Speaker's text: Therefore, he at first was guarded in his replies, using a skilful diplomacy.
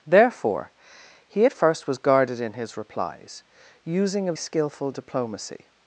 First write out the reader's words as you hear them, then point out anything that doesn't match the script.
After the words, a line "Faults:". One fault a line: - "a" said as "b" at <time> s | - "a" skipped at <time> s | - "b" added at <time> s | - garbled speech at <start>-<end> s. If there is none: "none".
Therefore, he at first was guarded in his replies, using a skilful diplomacy.
Faults:
none